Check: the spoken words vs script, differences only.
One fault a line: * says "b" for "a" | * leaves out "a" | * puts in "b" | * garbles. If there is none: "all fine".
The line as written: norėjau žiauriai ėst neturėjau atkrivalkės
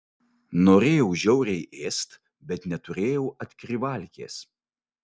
* puts in "bet"